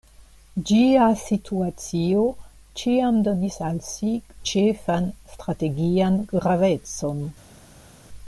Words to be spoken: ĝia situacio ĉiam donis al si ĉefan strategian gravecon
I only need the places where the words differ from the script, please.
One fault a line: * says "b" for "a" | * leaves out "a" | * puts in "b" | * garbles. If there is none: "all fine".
all fine